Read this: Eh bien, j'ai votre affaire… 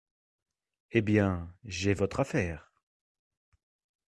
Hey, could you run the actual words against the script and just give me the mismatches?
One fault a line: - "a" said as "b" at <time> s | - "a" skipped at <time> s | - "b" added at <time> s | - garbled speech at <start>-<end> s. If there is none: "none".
none